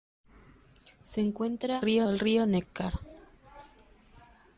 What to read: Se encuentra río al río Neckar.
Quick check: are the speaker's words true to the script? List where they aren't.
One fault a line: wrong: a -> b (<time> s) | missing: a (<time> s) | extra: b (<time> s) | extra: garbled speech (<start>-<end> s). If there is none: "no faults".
no faults